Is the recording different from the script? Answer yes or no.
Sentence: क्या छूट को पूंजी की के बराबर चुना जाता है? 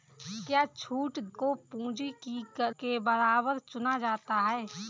no